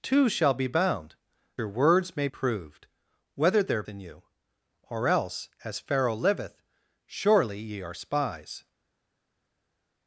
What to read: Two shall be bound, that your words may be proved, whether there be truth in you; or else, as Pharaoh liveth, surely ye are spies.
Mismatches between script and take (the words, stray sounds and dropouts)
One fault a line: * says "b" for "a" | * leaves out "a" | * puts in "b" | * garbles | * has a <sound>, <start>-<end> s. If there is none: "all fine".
* leaves out "that"
* leaves out "be"
* leaves out "be truth"